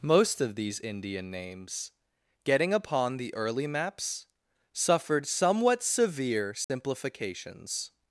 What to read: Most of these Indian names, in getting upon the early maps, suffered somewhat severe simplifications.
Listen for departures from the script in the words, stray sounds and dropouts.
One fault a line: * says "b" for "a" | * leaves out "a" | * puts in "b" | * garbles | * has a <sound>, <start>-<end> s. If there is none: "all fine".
* leaves out "in"
* has a dropout, 6.6-6.7 s